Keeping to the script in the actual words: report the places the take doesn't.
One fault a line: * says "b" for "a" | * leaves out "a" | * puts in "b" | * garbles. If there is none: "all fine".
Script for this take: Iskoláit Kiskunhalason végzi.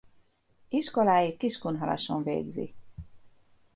all fine